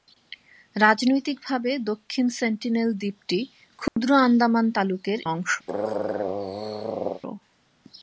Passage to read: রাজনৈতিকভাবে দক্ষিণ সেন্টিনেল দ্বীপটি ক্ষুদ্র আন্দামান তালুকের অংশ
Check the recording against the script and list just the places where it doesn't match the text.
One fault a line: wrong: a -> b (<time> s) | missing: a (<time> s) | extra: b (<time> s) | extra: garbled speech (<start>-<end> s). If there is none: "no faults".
no faults